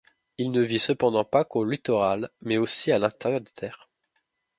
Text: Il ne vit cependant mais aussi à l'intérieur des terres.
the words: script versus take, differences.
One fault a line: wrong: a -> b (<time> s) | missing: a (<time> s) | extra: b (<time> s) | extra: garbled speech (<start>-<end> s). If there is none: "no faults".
extra: pas qu'au littoral (1.2 s)